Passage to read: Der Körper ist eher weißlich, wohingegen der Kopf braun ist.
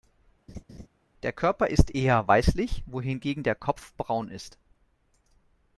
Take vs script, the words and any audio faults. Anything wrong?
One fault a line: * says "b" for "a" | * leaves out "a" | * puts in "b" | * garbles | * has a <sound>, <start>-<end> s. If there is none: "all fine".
* has a laugh, 0.5-0.9 s